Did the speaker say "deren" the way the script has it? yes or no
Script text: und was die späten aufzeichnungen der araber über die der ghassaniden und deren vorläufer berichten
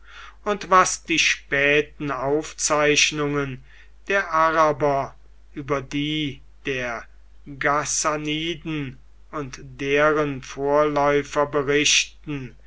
yes